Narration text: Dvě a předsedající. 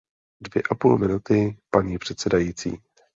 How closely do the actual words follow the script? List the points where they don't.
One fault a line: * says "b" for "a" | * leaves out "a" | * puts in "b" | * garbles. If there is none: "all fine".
* puts in "půl minuty paní"